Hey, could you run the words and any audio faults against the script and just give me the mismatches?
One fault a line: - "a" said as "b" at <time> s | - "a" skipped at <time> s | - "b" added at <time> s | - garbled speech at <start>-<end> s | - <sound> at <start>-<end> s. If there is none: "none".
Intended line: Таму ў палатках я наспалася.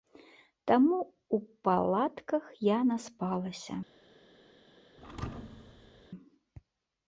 - thud at 5.0-6.1 s